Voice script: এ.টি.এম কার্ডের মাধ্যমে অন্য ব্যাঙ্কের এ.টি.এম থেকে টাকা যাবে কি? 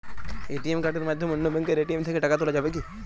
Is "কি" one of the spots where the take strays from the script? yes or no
no